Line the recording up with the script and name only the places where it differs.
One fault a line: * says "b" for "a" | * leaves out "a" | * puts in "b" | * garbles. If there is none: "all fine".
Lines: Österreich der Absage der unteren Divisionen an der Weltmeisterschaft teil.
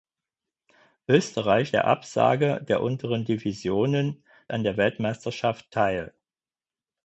all fine